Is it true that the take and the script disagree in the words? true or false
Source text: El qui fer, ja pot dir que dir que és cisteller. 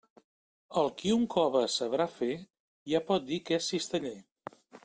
true